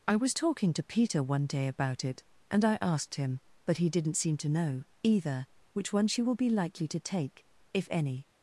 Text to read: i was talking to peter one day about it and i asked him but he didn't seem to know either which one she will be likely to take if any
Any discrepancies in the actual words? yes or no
no